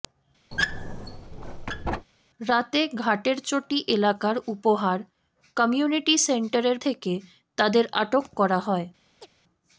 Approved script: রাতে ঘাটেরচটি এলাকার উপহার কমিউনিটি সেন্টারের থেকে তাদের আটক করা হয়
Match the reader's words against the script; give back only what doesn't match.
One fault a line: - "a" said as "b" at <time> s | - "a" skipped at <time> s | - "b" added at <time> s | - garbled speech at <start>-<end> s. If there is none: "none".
none